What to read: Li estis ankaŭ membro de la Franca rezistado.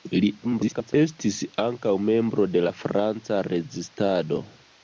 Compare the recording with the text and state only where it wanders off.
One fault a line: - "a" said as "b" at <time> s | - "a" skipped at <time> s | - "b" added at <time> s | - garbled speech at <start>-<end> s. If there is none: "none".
- garbled speech at 0.4-0.9 s